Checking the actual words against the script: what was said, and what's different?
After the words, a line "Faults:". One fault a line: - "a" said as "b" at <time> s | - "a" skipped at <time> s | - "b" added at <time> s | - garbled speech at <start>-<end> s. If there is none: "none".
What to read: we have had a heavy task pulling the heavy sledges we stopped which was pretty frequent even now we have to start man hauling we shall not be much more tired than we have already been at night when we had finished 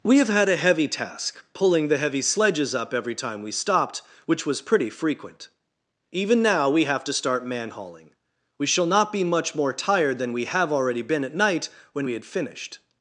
we have had a heavy task pulling the heavy sledges up every time we stopped which was pretty frequent even now we have to start man hauling we shall not be much more tired than we have already been at night when we had finished
Faults:
- "up every time" added at 2.7 s